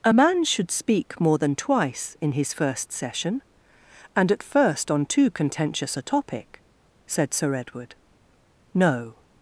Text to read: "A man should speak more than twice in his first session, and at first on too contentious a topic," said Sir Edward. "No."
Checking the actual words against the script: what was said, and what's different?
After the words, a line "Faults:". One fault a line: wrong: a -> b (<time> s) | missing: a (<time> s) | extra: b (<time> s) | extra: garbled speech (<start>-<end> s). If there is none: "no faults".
"A man should speak more than twice in his first session, and at first on too contentious a topic," said Sir Edward. "No."
Faults:
no faults